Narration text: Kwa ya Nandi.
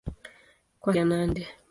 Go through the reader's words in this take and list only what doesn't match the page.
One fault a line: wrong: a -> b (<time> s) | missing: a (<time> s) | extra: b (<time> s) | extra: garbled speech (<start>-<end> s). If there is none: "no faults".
no faults